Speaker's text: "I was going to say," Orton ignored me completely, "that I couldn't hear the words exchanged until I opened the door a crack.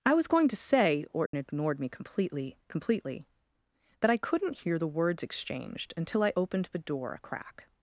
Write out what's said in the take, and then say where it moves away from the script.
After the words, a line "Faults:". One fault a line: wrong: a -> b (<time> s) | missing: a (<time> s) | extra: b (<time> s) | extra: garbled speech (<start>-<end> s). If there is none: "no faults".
"I was going to say," Orton ignored me completely completely, "that I couldn't hear the words exchanged until I opened the door a crack.
Faults:
extra: completely (2.7 s)